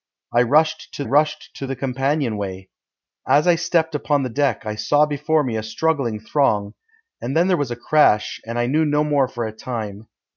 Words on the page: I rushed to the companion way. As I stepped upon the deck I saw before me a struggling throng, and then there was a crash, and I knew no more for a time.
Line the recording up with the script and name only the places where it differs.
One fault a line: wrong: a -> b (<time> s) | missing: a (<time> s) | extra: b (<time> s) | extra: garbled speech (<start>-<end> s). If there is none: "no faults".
extra: rushed to (1.0 s)